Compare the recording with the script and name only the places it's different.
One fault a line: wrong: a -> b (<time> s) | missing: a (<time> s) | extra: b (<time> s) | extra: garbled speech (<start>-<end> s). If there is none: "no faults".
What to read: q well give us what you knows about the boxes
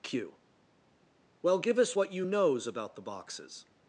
no faults